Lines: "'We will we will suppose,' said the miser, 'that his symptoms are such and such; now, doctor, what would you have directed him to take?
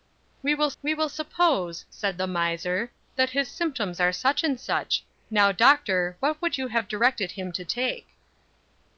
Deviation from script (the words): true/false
false